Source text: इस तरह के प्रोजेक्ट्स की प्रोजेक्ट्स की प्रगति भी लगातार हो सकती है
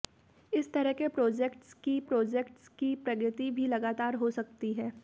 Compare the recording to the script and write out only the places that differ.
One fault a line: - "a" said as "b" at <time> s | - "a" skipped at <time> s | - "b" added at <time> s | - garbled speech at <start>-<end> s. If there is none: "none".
none